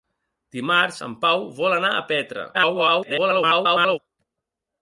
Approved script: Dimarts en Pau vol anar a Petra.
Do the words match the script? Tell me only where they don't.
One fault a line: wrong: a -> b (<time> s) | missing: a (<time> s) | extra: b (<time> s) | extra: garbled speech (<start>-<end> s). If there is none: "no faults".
extra: garbled speech (2.5-4.0 s)